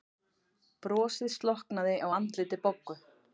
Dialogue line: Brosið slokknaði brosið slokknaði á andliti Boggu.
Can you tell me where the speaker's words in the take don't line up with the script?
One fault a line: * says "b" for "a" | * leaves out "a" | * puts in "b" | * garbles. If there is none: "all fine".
* leaves out "brosið slokknaði"